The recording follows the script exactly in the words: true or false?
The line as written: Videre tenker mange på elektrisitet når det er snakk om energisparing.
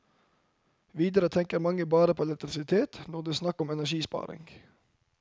false